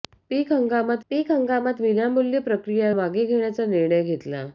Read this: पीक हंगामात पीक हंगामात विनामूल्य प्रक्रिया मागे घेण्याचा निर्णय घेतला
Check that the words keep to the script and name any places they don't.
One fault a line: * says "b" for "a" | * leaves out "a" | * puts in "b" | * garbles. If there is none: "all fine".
all fine